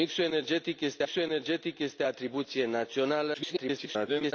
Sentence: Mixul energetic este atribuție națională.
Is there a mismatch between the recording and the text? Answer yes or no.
yes